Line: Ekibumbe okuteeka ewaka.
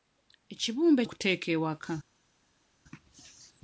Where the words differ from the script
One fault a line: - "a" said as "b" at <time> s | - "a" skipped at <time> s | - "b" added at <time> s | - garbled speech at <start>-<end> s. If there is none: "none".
none